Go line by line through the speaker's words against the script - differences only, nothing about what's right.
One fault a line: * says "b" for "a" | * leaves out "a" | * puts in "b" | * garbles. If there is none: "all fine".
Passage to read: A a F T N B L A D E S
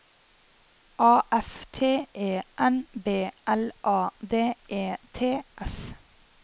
* leaves out "a"
* puts in "E"
* puts in "T"